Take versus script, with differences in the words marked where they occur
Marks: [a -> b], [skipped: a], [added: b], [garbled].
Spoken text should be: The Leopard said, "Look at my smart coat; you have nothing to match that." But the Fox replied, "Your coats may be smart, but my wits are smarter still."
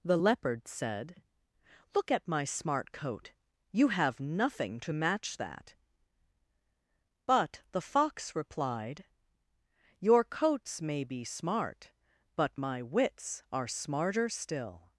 The Leopard said, "Look at my smart coat; you have nothing to match that." But the Fox replied, "Your coats may be smart, but my wits are smarter still."